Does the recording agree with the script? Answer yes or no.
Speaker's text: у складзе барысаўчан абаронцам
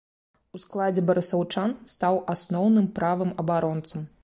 no